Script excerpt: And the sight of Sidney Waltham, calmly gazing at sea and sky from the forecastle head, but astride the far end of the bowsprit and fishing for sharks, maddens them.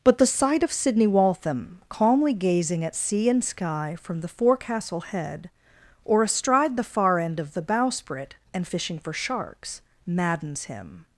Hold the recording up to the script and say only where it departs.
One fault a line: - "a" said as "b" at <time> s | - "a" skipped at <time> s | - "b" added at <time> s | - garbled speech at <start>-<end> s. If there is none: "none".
- "And" said as "But" at 0.0 s
- "but" said as "or" at 6.0 s
- "them" said as "him" at 10.6 s